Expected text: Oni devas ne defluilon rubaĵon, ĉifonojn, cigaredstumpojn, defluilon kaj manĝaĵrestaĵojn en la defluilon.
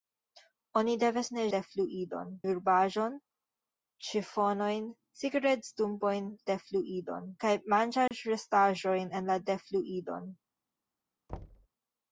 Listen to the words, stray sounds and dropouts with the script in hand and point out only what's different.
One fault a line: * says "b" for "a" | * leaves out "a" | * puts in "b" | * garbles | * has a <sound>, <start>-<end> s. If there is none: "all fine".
* has a dropout, 8.1-8.1 s
* has a thud, 11.3-11.7 s